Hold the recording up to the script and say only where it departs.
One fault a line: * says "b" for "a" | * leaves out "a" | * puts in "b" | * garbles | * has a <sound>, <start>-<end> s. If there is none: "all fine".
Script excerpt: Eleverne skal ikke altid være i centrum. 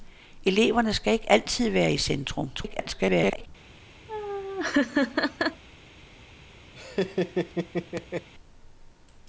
* garbles
* has a laugh, 4.1-5.6 s
* has a laugh, 6.7-8.3 s